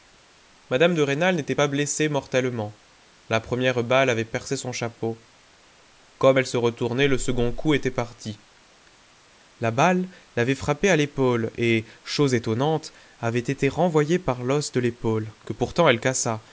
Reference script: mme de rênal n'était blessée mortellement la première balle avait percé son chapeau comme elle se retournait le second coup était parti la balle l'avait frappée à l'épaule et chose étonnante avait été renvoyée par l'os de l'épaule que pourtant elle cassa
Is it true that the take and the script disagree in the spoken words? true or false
true